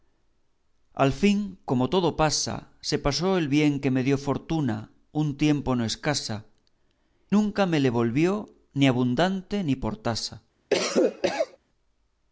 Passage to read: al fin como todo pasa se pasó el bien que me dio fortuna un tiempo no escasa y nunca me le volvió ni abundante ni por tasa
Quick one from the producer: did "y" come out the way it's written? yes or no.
no